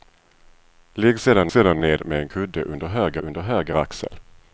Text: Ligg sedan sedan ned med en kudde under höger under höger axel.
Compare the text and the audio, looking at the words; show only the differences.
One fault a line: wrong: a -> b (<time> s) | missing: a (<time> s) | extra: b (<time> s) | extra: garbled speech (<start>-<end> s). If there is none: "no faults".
no faults